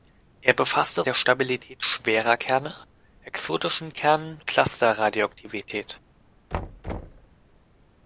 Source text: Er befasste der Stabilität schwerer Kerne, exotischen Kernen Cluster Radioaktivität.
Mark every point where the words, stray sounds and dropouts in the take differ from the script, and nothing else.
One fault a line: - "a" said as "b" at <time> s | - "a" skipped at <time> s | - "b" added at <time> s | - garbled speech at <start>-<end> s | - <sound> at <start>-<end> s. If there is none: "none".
- thud at 6.5-7.3 s